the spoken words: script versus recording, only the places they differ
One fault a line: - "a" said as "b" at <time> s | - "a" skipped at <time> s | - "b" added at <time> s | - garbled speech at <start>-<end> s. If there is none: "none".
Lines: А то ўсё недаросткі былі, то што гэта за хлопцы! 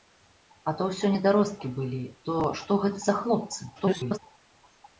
- garbled speech at 3.8-4.2 s